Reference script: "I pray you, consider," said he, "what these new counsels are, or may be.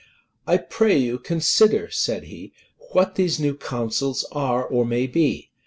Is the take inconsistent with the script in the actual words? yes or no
no